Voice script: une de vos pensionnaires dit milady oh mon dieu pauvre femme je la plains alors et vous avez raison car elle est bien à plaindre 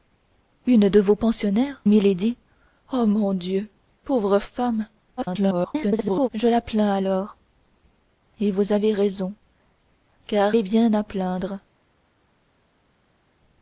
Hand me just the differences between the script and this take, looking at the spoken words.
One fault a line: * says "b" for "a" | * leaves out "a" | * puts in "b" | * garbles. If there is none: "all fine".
* leaves out "dit"
* garbles
* leaves out "elle"